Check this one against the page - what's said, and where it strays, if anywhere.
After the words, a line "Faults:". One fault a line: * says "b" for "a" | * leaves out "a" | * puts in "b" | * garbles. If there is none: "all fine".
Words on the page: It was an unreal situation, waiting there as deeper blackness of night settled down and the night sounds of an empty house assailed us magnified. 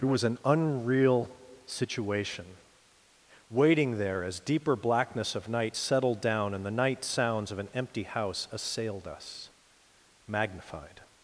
It was an unreal situation, waiting there as deeper blackness of night settled down and the night sounds of an empty house assailed us magnified.
Faults:
all fine